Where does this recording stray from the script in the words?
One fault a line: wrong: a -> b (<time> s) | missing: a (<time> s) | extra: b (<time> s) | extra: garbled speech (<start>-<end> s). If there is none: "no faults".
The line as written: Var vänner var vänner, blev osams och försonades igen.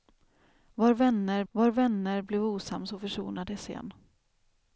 no faults